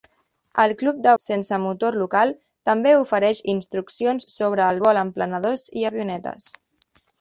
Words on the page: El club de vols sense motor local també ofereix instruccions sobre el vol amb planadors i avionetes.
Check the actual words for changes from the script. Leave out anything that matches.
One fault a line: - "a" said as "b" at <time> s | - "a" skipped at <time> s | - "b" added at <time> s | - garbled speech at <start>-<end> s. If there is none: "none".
- "vols" skipped at 1.1 s